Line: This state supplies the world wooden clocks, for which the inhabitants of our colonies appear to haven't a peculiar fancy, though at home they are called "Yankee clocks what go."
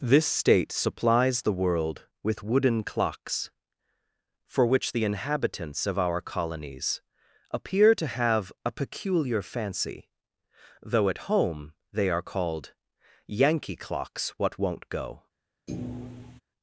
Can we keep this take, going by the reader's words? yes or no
no